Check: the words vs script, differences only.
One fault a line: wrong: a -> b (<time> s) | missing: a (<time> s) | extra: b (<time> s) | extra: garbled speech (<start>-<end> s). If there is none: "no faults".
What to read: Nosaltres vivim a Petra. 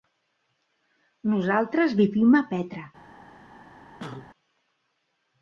no faults